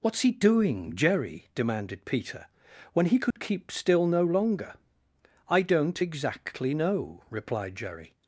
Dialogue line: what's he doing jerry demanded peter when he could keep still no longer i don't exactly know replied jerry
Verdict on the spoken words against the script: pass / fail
pass